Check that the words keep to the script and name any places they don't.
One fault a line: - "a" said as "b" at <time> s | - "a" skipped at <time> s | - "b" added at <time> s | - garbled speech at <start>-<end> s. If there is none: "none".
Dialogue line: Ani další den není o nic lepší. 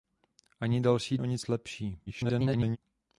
- "den není" skipped at 1.2 s
- garbled speech at 2.1-2.8 s